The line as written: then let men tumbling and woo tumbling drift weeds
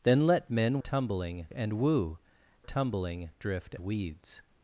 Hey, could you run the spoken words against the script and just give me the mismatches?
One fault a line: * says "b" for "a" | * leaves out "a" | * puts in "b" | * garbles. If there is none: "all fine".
all fine